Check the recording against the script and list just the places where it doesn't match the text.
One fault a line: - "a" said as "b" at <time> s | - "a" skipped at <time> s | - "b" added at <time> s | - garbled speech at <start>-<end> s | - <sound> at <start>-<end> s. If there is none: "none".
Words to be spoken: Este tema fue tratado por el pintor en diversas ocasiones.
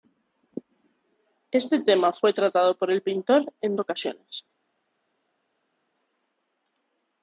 - "diversas" skipped at 3.8 s